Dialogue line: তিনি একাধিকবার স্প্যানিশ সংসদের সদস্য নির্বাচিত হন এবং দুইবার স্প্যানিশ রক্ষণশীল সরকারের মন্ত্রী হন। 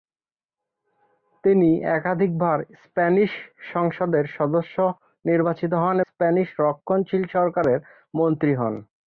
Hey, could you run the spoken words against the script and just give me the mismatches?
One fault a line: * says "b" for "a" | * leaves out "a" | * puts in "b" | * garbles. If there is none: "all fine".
* leaves out "এবং দুইবার"